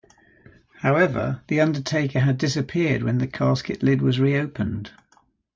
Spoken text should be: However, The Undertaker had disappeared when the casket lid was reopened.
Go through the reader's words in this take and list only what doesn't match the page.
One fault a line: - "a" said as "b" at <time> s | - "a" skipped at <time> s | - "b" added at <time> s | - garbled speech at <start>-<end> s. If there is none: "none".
none